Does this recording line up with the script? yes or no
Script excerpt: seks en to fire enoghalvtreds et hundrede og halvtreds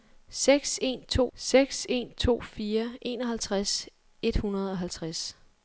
no